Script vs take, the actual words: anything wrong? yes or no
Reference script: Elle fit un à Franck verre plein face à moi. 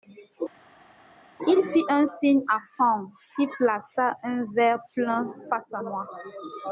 yes